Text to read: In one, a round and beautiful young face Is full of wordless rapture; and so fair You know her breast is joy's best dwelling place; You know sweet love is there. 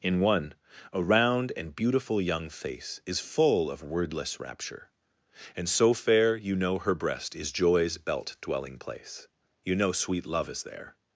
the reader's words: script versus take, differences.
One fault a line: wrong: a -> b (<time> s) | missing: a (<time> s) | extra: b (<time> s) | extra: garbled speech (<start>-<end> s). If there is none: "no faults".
wrong: best -> belt (8.0 s)